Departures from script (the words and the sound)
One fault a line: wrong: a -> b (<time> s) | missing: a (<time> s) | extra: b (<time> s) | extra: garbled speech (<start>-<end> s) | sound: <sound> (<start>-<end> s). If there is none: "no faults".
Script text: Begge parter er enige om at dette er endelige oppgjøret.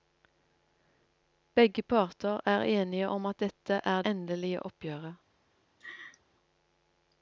sound: laugh (5.8-6.2 s)